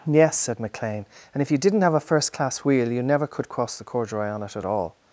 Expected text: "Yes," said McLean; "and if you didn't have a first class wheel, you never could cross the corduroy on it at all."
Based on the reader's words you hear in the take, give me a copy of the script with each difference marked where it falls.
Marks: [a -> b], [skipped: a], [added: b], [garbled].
"Yes," said McLean; "and if you didn't have a first class wheel, you never could cross the corduroy on it at all."